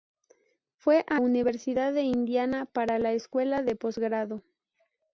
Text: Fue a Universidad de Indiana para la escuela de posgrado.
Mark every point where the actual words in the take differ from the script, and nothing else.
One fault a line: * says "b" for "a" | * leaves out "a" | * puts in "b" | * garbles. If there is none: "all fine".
all fine